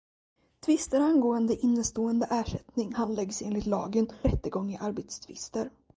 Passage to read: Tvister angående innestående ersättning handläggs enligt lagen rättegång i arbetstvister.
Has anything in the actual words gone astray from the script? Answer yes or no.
no